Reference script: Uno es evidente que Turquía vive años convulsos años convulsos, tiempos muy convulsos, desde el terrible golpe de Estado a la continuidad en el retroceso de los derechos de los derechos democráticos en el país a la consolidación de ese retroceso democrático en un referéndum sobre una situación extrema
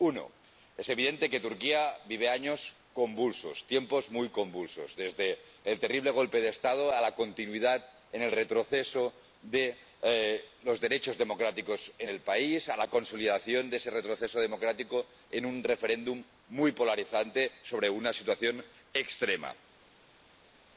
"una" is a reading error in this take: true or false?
false